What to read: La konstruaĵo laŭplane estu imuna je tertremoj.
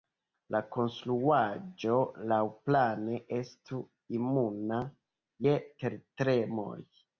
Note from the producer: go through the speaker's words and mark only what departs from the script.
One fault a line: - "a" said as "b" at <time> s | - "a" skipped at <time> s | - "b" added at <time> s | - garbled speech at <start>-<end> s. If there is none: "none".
none